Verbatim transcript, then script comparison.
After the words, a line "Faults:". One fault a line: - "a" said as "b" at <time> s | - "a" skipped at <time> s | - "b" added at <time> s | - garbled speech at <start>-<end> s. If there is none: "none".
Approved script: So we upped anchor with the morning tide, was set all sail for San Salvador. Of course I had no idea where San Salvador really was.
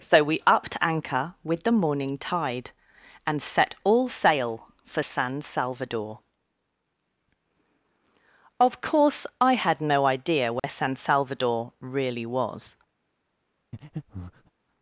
So we upped anchor with the morning tide, and set all sail for San Salvador. Of course I had no idea where San Salvador really was.
Faults:
- "was" said as "and" at 3.2 s